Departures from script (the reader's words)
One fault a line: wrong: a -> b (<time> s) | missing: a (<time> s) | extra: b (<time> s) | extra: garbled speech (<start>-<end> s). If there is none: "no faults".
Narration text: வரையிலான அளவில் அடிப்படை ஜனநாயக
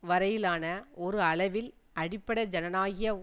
extra: ஒரு (1.0 s)